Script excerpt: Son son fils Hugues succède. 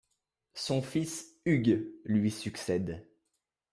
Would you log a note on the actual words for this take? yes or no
yes